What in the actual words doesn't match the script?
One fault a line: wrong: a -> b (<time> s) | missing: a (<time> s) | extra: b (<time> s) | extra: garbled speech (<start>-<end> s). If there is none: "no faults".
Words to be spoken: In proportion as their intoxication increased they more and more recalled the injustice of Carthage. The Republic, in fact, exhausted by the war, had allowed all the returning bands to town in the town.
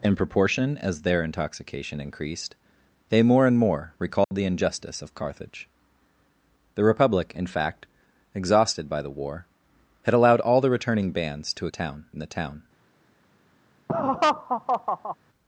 no faults